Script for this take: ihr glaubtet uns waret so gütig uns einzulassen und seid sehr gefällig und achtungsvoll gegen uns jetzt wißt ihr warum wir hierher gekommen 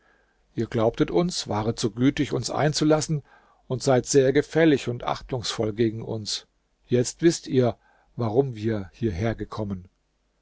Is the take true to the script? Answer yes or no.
yes